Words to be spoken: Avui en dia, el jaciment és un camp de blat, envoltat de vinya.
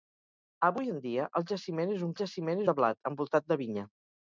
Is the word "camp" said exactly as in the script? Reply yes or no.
no